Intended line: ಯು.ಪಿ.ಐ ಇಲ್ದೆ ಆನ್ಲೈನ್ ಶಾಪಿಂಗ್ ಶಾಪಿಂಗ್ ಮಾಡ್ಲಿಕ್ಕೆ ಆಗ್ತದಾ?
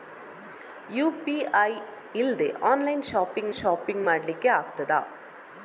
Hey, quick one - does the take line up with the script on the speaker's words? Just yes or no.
yes